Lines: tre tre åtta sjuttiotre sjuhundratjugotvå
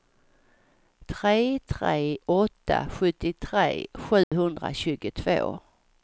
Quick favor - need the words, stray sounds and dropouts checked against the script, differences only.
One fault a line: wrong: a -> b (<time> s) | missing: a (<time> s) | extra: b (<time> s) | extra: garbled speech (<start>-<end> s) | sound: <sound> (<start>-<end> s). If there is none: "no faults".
sound: dropout (4.2-4.3 s)